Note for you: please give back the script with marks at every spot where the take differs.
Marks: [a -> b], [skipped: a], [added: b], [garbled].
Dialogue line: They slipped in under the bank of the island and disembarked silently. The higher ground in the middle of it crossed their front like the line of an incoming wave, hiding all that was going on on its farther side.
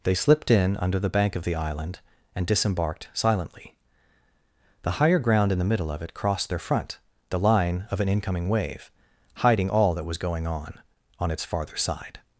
They slipped in under the bank of the island and disembarked silently. The higher ground in the middle of it crossed their front [skipped: like] the line of an incoming wave, hiding all that was going on on its farther side.